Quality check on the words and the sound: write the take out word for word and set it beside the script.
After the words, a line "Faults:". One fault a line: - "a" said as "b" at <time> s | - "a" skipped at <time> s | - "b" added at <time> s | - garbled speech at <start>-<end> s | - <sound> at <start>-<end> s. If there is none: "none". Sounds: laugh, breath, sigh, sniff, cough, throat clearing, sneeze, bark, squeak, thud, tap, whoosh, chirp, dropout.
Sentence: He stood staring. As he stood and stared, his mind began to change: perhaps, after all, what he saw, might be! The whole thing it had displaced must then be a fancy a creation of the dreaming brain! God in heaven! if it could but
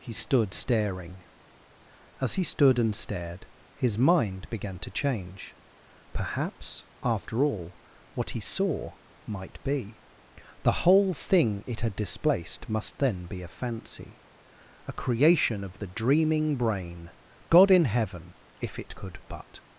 He stood staring. As he stood and stared, his mind began to change: perhaps, after all, what he saw, might be! The whole thing it had displaced must then be a fancy a creation of the dreaming brain! God in heaven! if it could but
Faults:
none